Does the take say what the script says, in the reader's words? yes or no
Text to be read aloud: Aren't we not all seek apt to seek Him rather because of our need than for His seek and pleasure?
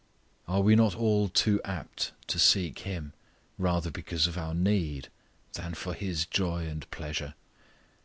no